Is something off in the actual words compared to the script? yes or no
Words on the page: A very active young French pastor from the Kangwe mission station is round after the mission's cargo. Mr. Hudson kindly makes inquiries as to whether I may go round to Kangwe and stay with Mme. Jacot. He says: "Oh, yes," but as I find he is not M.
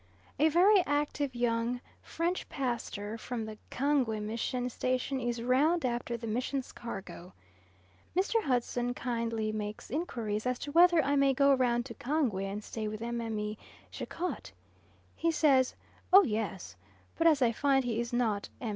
no